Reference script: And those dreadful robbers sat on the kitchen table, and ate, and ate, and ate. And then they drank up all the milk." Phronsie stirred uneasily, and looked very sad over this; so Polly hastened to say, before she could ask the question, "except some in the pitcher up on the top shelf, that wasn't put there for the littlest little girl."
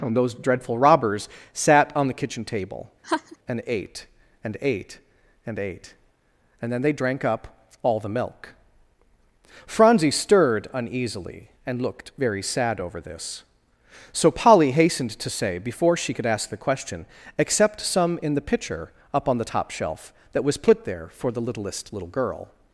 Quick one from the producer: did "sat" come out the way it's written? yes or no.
yes